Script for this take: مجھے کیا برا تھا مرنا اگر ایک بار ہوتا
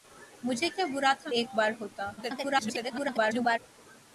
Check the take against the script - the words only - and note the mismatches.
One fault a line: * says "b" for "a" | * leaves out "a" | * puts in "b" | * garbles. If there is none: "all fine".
* leaves out "مرنا اگر"
* garbles